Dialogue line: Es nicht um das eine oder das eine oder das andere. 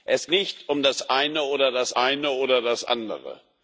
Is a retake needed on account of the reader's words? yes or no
no